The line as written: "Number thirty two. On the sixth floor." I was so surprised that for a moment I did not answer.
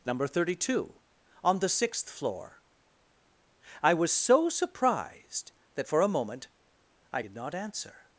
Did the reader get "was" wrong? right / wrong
right